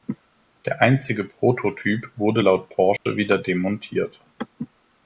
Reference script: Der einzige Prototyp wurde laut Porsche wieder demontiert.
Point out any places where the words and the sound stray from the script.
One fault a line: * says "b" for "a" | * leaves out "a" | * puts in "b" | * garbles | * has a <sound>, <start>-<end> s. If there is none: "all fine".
* has a dropout, 3.0-3.1 s